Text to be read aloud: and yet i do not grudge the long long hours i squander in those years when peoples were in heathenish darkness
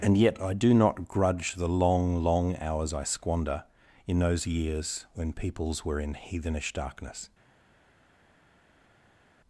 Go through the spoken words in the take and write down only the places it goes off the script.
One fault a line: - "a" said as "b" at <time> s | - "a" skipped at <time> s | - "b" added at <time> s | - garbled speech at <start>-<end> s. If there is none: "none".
none